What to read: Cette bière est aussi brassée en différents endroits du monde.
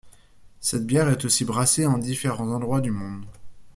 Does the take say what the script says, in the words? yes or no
yes